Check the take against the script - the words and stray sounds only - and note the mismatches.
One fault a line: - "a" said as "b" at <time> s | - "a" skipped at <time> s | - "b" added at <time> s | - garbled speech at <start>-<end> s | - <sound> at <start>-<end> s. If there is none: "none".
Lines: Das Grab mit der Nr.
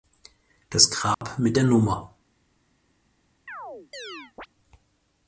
- dropout at 1.1-1.2 s
- chirp at 3.5-4.5 s